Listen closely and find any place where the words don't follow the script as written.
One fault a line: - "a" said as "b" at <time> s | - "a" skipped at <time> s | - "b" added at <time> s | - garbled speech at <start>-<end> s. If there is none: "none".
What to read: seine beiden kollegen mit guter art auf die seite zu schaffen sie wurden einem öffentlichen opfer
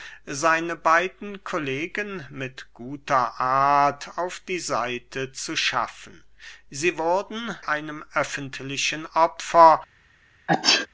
none